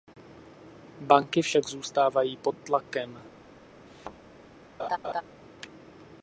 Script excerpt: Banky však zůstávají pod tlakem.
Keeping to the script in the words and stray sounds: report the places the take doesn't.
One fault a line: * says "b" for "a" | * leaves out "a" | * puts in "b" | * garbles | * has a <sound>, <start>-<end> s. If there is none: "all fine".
* has a thud, 3.9-4.2 s
* has a laugh, 4.8-5.2 s